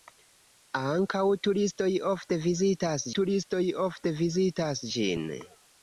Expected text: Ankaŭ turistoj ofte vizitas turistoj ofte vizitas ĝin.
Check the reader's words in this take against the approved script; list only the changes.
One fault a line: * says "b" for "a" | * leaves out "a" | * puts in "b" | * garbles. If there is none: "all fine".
all fine